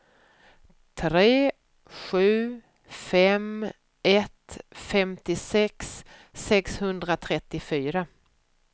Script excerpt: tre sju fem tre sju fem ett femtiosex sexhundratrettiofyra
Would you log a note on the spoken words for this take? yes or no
yes